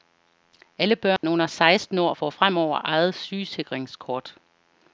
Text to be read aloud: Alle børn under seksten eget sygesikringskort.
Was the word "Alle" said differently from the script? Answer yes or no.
no